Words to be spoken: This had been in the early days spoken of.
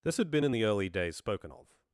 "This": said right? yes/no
yes